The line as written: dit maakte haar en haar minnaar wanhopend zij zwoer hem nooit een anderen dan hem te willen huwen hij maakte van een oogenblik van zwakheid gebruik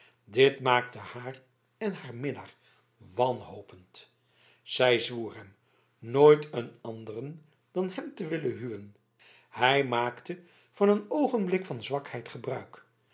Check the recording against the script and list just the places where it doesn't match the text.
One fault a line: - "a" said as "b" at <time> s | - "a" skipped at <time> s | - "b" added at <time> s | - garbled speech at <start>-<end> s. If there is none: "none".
none